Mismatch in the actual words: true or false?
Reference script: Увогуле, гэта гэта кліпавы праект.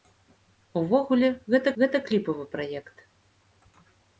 false